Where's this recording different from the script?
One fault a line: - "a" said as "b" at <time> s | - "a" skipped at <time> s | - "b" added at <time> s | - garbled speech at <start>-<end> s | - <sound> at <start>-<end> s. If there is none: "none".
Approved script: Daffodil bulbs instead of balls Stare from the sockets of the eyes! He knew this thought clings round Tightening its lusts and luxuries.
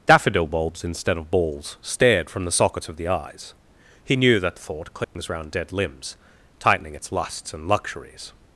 - "Stare" said as "Stared" at 1.8 s
- "this" said as "that" at 4.4 s
- dropout at 5.0-5.2 s
- "dead limbs" added at 5.5 s